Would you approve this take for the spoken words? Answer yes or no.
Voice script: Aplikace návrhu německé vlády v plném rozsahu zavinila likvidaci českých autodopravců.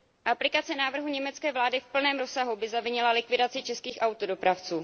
no